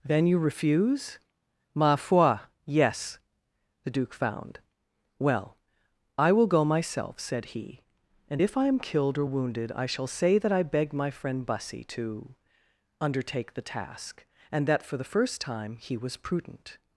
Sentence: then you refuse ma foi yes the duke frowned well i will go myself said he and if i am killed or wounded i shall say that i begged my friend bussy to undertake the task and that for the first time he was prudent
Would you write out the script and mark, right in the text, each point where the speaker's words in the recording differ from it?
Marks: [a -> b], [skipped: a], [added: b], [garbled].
then you refuse ma foi yes the duke [frowned -> found] well i will go myself said he and if i am killed or wounded i shall say that i begged my friend bussy to undertake the task and that for the first time he was prudent